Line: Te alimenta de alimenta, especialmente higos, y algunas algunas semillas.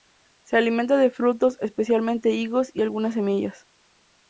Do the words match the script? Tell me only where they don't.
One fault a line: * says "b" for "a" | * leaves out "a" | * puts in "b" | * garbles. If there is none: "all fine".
* says "Se" for "Te"
* says "frutos" for "alimenta"
* leaves out "algunas"